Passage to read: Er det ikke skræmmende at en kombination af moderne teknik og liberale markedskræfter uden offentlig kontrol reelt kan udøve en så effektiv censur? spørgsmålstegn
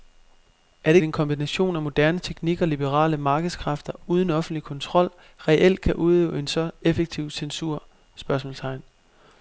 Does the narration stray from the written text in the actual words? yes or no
yes